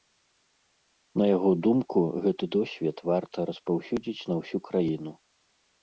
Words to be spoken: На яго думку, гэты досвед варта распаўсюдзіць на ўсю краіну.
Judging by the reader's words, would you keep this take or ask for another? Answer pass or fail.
pass